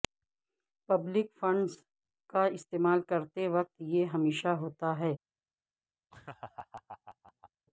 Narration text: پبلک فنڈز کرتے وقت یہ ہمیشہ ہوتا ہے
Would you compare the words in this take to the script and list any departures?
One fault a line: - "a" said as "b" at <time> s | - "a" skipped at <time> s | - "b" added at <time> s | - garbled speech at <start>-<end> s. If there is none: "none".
- "کا استعمال" added at 2.3 s